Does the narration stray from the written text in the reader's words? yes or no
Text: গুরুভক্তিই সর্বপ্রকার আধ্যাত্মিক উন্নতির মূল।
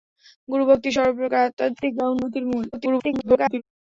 yes